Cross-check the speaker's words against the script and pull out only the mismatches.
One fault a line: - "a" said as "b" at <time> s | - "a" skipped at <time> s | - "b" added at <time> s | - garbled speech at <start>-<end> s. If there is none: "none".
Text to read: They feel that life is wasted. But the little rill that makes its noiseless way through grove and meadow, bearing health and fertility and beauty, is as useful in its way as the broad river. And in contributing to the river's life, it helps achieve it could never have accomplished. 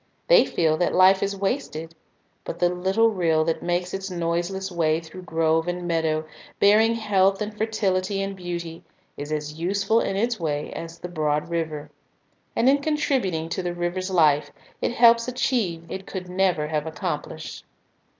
none